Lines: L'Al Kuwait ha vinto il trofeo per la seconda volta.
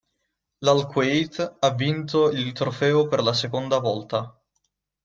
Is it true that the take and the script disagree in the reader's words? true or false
false